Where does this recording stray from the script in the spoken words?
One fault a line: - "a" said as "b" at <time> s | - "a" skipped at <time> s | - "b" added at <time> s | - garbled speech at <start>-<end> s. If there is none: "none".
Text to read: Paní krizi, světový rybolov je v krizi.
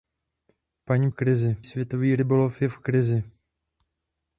none